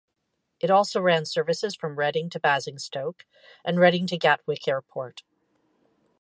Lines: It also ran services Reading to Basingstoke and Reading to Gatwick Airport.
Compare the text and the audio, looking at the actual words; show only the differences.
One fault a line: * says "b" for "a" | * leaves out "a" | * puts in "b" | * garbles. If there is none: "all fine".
* puts in "from"